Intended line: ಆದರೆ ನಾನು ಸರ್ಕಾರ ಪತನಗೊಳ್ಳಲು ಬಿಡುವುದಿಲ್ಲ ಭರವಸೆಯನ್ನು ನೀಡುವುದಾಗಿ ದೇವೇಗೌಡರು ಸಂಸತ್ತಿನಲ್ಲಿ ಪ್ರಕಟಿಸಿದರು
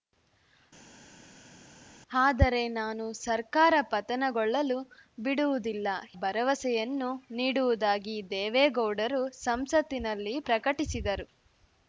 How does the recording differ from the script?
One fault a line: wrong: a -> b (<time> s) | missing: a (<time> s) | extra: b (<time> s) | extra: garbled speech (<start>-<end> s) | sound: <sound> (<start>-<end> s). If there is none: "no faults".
no faults